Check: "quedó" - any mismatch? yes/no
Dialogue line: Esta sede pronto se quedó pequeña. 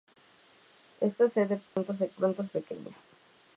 yes